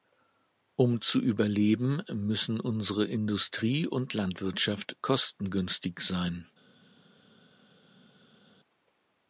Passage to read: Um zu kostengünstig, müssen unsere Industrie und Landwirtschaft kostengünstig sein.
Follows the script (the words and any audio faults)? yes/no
no